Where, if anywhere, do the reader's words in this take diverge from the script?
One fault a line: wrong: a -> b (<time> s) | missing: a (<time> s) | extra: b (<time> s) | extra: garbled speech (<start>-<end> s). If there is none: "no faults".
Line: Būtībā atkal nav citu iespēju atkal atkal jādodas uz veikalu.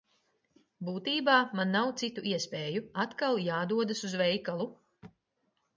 wrong: atkal -> man (1.6 s)
missing: atkal (3.4 s)